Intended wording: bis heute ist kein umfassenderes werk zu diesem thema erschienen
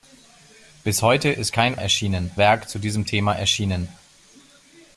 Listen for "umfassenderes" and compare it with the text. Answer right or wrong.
wrong